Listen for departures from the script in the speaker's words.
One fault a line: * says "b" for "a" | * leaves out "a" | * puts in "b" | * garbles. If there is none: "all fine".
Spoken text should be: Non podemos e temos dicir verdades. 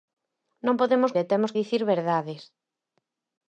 all fine